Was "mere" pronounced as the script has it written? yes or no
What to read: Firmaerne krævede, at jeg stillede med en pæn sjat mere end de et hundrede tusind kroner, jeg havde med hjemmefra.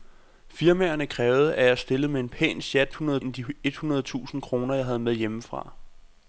no